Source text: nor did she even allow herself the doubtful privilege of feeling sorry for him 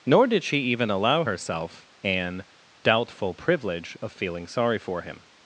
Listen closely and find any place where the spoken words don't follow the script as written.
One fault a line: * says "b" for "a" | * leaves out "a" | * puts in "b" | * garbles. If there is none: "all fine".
* says "an" for "the"